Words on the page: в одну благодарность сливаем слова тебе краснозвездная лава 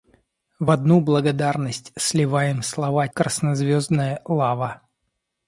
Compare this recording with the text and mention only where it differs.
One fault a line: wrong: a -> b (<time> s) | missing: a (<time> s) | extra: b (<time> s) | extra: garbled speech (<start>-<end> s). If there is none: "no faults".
missing: тебе (3.1 s)